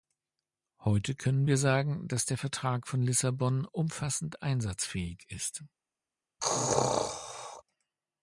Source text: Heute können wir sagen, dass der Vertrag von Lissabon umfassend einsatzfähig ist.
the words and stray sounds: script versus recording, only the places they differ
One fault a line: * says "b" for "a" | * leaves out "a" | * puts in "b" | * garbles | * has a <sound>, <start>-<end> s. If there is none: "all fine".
* has a sneeze, 6.4-7.6 s